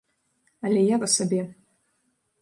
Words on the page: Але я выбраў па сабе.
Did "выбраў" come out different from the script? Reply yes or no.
yes